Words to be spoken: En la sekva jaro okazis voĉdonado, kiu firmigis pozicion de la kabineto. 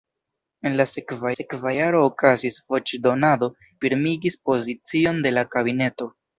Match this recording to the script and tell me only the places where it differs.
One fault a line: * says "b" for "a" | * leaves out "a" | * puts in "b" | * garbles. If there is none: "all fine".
* puts in "sekva"
* leaves out "kiu"